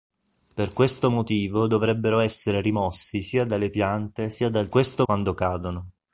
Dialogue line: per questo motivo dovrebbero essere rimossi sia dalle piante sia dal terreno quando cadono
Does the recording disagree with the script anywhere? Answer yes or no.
yes